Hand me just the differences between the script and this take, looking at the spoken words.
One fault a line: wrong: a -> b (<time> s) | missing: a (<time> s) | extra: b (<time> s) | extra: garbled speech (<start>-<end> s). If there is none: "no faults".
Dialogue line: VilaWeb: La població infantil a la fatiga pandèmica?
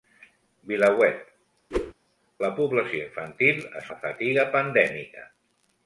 no faults